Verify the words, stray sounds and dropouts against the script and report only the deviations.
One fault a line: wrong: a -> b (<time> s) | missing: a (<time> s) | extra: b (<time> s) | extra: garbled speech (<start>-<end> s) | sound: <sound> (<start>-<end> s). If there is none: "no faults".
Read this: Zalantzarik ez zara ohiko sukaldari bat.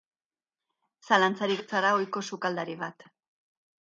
no faults